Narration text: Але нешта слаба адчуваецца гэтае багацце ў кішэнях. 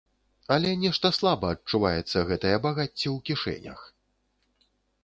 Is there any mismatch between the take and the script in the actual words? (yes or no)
no